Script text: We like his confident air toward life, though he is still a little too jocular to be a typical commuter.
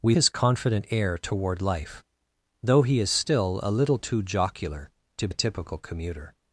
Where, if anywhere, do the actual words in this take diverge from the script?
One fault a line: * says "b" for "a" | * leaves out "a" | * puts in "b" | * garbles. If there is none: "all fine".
* leaves out "like"
* leaves out "be"